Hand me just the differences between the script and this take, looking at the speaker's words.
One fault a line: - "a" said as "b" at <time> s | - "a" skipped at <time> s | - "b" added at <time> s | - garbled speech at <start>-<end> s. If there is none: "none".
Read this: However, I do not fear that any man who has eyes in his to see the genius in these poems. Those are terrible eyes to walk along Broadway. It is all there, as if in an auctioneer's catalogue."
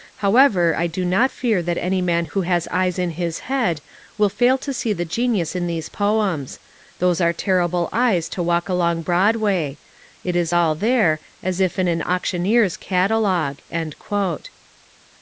- "head will fail" added at 3.4 s